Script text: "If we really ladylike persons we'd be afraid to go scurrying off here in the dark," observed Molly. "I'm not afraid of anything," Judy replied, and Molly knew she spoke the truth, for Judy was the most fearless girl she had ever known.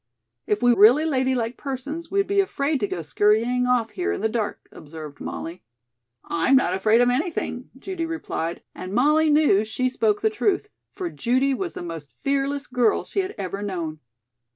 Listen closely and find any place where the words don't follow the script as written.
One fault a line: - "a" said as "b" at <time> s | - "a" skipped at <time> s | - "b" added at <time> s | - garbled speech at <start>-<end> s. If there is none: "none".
none